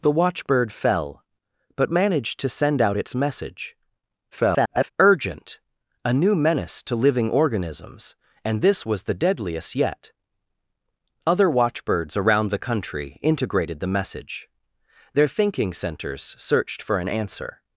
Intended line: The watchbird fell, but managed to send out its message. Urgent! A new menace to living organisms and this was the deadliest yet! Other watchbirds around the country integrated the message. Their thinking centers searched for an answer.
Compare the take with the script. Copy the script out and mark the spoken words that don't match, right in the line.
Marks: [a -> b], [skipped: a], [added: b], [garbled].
The watchbird fell, but managed to send out its message. [garbled] Urgent! A new menace to living organisms and this was the deadliest yet! Other watchbirds around the country integrated the message. Their thinking centers searched for an answer.